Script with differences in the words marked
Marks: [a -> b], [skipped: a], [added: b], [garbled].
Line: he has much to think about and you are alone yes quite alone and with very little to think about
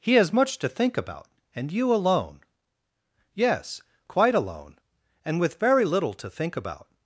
he has much to think about and you [skipped: are] alone yes quite alone and with very little to think about